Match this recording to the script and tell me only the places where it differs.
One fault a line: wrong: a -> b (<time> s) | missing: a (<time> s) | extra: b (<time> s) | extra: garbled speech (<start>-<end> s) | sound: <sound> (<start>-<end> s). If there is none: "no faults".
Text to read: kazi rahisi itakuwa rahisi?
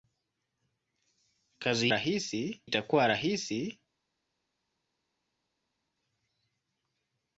no faults